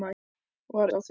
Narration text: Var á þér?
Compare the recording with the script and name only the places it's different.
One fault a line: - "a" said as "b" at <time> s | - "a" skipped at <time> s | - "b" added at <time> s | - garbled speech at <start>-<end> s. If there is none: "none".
none